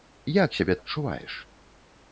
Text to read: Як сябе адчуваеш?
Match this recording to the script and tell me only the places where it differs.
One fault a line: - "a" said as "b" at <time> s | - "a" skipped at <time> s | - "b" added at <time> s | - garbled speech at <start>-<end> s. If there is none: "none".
none